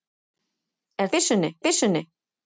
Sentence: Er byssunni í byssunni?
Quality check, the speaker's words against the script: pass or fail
pass